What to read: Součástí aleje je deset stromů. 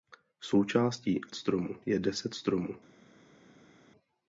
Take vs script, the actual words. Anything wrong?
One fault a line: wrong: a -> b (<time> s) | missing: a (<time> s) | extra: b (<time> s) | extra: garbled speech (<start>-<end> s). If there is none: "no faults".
wrong: aleje -> stromů (1.4 s)